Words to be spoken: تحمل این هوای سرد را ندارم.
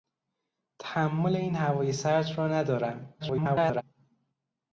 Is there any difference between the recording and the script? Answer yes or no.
yes